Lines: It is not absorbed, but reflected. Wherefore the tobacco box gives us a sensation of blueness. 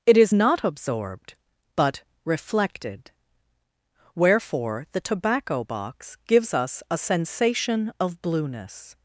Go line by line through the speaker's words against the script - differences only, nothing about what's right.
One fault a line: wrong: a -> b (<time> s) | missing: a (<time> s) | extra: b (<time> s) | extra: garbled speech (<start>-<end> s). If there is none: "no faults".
no faults